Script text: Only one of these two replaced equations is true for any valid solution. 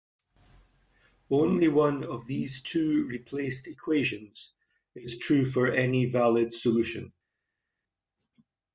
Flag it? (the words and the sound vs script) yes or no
no